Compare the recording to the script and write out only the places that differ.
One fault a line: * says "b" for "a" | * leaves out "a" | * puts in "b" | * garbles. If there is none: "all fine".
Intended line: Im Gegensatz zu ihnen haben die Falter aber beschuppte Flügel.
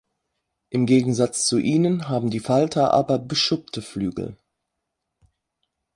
all fine